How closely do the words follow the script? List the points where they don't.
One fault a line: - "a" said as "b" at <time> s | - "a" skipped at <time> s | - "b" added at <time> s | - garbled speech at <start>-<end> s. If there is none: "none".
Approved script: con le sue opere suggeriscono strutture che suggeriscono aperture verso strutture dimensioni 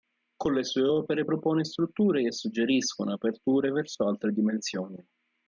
- "suggeriscono" said as "propone" at 1.2 s
- "strutture" said as "altre" at 4.1 s